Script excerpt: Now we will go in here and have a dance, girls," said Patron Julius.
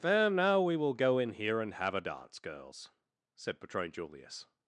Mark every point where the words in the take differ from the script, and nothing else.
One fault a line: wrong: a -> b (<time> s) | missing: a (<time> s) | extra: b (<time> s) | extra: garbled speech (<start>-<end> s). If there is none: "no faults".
extra: then (0.0 s)